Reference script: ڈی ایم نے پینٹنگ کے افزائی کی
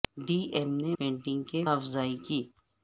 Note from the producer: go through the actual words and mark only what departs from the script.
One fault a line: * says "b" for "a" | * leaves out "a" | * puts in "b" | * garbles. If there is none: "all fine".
all fine